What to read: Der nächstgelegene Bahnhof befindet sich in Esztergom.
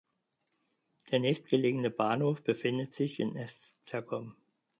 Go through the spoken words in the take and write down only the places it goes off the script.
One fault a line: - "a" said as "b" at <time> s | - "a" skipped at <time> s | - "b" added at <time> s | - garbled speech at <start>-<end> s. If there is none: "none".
none